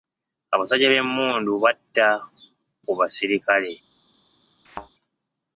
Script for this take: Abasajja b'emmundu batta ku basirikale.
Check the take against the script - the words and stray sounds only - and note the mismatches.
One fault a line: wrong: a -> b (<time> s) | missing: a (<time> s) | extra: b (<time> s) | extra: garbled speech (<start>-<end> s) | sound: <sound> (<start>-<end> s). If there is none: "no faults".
sound: thud (4.7-4.9 s)